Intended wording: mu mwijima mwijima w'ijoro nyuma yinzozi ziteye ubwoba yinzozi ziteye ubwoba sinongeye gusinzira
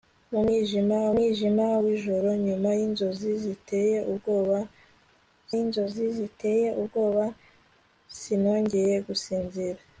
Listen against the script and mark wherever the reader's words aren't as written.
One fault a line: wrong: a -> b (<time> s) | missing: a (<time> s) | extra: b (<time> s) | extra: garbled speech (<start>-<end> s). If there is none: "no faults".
no faults